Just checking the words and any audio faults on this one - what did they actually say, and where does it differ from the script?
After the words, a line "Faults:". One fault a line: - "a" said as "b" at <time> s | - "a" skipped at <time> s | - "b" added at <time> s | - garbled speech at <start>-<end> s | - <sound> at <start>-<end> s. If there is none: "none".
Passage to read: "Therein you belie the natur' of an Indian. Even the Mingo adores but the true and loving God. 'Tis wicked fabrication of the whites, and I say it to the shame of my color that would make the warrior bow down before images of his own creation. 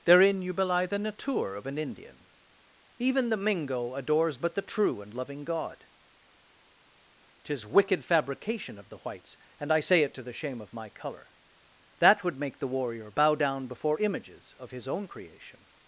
"Therein you belie the natur' of an Indian. Even the Mingo adores but the true and loving God. 'Tis wicked fabrication of the whites, and I say it to the shame of my color that would make the warrior bow down before images of his own creation.
Faults:
none